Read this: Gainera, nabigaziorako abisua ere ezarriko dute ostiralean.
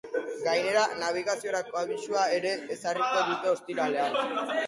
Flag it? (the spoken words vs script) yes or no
no